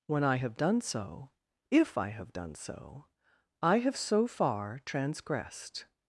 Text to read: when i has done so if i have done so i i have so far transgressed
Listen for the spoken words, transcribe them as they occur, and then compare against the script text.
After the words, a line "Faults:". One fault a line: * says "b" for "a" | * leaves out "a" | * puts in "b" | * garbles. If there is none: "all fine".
when i have done so if i have done so i have so far transgressed
Faults:
* says "have" for "has"
* leaves out "i"